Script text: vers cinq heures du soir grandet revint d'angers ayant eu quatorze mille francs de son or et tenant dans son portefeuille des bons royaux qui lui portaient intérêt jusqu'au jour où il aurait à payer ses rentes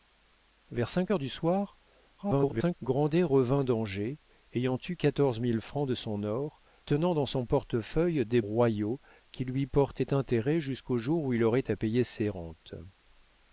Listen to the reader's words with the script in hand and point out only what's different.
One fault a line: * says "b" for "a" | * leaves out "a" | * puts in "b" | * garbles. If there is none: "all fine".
* garbles
* leaves out "et"
* leaves out "bons"